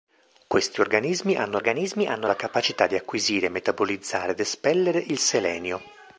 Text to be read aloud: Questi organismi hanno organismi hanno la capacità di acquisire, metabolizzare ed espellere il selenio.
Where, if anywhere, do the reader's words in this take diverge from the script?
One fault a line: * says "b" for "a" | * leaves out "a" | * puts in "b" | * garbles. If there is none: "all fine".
all fine